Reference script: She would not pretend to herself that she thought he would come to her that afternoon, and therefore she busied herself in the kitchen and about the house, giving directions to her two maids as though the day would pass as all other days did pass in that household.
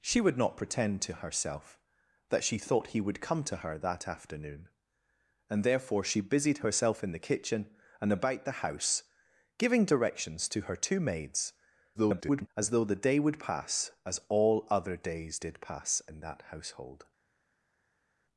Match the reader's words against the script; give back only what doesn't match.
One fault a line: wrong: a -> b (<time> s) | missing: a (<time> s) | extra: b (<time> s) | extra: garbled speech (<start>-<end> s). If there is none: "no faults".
extra: garbled speech (11.9-12.5 s)